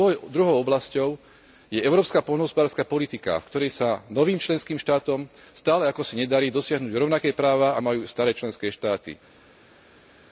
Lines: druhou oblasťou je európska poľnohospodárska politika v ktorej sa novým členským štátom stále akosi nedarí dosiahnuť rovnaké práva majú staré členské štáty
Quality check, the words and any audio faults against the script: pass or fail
pass